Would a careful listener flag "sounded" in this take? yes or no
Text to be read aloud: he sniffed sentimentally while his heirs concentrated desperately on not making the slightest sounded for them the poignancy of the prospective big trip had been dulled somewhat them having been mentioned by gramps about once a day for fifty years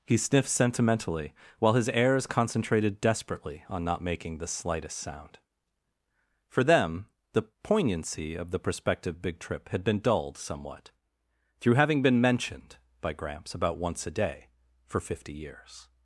yes